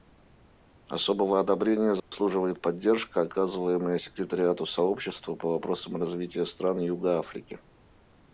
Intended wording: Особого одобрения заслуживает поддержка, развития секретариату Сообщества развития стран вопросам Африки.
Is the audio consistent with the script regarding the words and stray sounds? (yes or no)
no